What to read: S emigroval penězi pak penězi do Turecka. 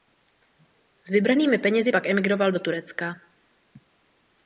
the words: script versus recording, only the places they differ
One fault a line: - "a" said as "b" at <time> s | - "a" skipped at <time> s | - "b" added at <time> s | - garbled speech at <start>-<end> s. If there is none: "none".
- "emigroval" said as "vybranými" at 1.1 s
- "penězi" said as "emigroval" at 2.1 s